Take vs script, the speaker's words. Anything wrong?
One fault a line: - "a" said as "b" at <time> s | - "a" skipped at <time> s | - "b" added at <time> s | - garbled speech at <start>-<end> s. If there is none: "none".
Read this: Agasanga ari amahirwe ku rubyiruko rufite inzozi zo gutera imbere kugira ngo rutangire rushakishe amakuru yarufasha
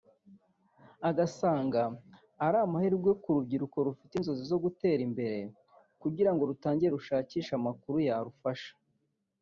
none